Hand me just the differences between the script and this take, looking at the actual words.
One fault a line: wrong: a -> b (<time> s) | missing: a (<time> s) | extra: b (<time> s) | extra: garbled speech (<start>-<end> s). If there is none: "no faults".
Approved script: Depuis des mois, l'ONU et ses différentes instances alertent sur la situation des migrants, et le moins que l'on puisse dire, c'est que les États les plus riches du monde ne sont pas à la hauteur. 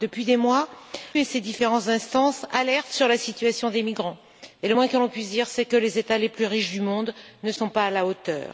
missing: l'ONU (0.7 s)